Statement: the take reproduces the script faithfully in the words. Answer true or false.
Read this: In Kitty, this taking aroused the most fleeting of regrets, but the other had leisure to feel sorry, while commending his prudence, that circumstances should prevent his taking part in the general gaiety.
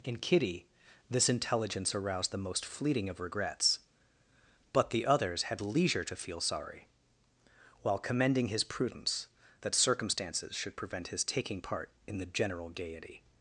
false